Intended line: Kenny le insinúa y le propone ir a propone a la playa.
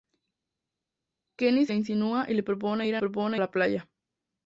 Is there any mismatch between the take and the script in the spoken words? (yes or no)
no